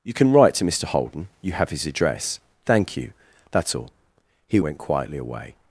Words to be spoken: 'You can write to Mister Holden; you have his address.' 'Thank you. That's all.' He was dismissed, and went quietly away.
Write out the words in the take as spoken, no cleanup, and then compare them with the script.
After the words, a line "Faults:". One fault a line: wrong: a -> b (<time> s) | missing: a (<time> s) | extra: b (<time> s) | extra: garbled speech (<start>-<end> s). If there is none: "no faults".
'You can write to Mister Holden; you have his address.' 'Thank you. That's all.' He went quietly away.
Faults:
missing: was dismissed and (4.6 s)